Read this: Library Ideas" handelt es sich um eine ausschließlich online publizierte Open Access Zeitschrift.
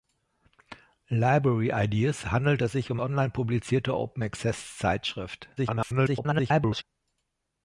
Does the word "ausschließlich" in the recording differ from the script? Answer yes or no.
yes